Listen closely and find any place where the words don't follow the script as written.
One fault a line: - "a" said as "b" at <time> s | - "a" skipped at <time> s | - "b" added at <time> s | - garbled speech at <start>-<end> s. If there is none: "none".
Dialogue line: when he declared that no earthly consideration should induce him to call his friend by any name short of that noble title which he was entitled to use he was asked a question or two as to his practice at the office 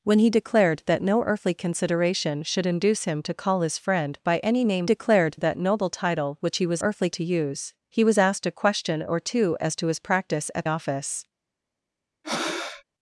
- "short" said as "declared" at 4.9 s
- "entitled" said as "earthly" at 6.8 s
- "the" skipped at 10.7 s